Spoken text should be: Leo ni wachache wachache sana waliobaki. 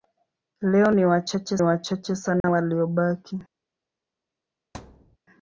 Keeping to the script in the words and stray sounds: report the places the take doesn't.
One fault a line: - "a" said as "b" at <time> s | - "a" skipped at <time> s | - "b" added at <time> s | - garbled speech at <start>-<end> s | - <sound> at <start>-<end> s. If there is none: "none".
- dropout at 2.4-2.4 s
- thud at 4.7-5.2 s